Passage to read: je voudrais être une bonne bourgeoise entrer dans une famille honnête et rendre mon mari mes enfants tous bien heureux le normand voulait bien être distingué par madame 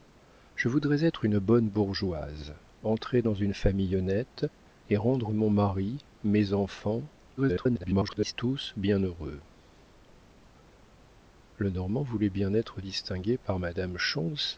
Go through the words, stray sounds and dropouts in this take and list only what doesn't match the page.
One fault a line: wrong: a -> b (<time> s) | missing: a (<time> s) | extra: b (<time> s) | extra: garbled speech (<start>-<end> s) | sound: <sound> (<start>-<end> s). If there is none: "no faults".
extra: garbled speech (7.4-8.3 s)